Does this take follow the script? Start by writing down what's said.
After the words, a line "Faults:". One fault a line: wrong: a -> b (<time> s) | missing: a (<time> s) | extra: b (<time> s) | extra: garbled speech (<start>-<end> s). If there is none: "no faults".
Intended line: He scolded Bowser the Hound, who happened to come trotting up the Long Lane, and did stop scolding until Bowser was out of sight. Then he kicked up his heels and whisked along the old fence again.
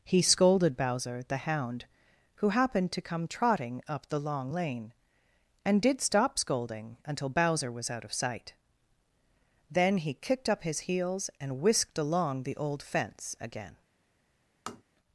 He scolded Bowser the Hound, who happened to come trotting up the Long Lane, and did stop scolding until Bowser was out of sight. Then he kicked up his heels and whisked along the old fence again.
Faults:
no faults